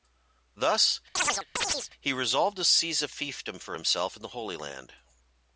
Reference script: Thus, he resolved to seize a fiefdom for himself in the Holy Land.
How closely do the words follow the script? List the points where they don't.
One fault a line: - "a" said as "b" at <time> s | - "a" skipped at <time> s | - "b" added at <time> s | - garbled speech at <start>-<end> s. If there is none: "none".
none